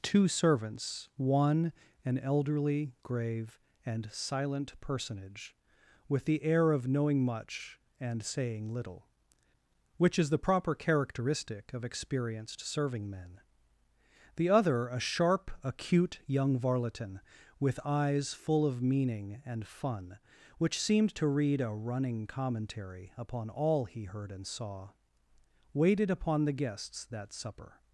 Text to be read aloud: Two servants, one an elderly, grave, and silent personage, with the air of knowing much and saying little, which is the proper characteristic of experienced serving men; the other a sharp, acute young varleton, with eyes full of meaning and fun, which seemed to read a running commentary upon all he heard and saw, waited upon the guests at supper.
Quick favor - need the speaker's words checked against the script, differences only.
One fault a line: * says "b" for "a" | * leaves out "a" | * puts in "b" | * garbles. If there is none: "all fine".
* says "that" for "at"